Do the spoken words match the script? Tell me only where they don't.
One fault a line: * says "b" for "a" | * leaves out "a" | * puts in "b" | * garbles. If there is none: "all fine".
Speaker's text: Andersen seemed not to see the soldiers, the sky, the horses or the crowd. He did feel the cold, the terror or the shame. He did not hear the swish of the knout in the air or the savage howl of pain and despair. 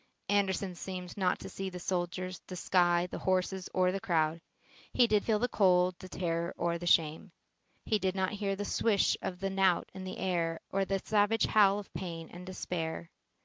all fine